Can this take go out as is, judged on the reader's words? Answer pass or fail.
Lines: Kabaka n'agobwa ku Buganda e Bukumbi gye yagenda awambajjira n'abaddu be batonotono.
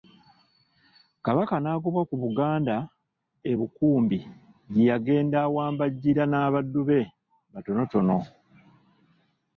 pass